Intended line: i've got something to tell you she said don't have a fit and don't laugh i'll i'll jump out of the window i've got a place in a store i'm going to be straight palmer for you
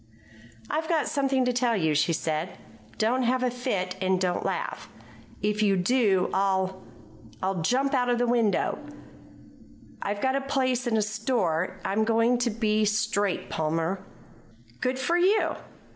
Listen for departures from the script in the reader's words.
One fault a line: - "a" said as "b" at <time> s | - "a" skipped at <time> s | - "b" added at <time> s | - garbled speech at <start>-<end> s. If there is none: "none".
- "if you do" added at 5.4 s
- "good" added at 14.8 s